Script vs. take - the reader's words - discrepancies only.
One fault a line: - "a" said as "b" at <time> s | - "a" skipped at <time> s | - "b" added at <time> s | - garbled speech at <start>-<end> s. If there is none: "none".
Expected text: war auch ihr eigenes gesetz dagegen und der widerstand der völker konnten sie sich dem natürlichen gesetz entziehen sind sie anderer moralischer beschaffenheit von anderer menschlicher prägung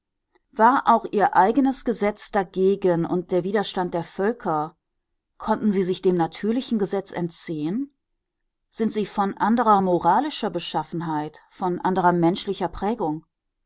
- "von" added at 9.1 s